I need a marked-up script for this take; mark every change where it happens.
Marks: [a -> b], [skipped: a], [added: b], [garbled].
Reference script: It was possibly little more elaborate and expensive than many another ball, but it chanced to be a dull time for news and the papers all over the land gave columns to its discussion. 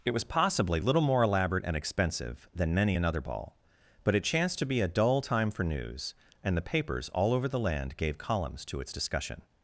It was possibly little more elaborate and expensive than many another ball, but it chanced to be a dull time for news and the papers all over the land gave columns to its discussion.